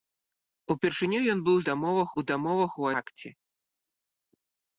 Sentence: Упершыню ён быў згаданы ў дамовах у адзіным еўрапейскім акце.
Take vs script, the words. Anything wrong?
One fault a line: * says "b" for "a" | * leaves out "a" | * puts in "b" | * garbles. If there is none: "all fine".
* says "дамовах" for "згаданы"
* leaves out "адзіным еўрапейскім"